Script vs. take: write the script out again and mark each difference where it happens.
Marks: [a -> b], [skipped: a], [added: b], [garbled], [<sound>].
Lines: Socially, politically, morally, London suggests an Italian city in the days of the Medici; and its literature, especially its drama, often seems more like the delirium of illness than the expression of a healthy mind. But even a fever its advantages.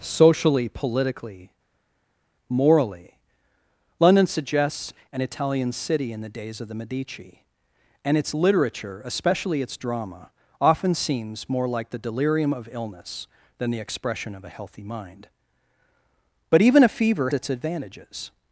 Socially, politically, morally, London suggests an Italian city in the days of the Medici; and its literature, especially its drama, often seems more like the delirium of illness than the expression of a healthy mind. But even a fever its advantages.